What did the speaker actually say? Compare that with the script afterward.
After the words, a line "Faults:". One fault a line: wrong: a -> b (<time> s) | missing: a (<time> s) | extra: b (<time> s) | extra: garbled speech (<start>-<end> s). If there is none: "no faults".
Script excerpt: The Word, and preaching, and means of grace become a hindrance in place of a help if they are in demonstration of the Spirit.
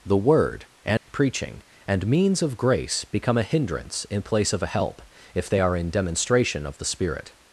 The Word, and preaching, and means of grace become a hindrance in place of a help if they are in demonstration of the Spirit.
Faults:
no faults